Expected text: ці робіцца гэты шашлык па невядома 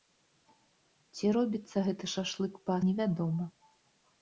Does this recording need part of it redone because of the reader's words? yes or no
no